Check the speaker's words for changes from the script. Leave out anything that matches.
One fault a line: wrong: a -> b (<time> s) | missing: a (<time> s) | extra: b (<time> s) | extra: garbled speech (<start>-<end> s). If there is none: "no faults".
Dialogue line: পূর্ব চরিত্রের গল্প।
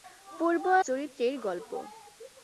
no faults